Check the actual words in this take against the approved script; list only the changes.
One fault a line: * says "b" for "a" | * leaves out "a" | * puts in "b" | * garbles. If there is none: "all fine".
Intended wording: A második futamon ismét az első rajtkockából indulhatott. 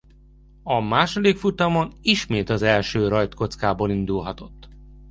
all fine